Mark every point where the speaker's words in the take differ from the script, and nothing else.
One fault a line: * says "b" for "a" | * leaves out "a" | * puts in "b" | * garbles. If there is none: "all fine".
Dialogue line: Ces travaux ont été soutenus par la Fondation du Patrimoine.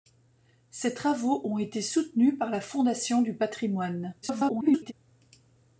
* garbles